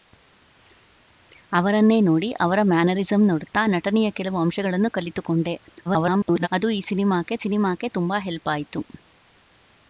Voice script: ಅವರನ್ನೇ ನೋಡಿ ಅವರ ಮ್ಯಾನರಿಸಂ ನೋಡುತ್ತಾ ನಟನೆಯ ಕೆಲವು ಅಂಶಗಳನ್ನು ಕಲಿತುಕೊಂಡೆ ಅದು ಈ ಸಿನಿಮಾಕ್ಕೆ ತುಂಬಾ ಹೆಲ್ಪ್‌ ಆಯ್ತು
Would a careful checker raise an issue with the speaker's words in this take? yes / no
yes